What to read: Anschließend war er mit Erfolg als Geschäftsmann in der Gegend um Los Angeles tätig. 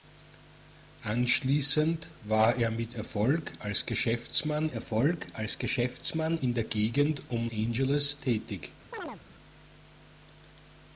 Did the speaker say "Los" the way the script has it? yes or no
no